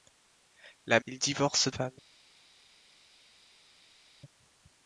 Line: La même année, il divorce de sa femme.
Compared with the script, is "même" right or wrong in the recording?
wrong